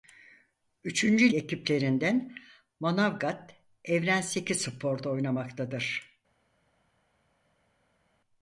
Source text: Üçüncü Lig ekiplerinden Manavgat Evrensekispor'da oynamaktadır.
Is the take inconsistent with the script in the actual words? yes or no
yes